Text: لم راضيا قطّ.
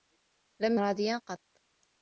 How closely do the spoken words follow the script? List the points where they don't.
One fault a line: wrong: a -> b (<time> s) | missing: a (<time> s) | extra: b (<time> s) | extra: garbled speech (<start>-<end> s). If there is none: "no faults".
no faults